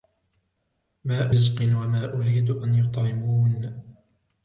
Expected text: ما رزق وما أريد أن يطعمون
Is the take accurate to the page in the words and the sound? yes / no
yes